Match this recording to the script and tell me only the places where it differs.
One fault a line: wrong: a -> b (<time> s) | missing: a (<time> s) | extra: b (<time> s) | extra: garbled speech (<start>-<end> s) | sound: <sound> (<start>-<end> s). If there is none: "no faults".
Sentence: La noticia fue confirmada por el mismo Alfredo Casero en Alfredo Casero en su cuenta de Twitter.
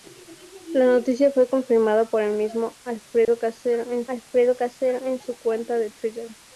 sound: dropout (3.2-3.3 s)